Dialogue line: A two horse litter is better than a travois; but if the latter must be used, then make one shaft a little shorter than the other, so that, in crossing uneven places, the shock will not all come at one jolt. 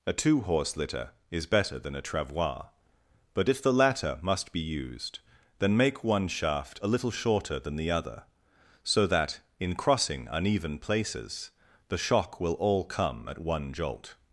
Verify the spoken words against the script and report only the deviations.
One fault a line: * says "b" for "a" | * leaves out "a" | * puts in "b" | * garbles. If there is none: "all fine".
* leaves out "not"